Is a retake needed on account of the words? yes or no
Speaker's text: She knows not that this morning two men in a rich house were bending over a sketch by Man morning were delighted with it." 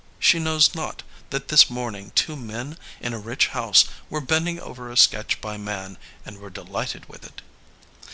yes